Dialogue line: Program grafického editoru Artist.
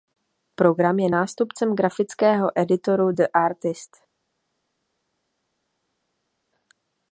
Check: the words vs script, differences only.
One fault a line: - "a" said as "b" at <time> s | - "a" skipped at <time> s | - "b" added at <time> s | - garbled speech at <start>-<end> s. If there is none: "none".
- "je nástupcem" added at 1.0 s
- "The" added at 3.1 s